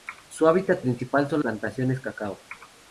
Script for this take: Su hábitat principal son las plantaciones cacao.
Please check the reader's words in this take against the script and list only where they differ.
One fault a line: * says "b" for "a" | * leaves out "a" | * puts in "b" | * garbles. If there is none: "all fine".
* leaves out "las"